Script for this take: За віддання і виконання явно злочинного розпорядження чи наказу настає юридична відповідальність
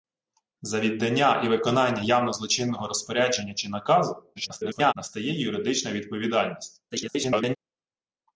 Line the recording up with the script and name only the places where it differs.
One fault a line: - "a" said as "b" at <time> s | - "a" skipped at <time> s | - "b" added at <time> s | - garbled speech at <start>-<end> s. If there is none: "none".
- garbled speech at 4.4-4.9 s
- garbled speech at 6.9-7.6 s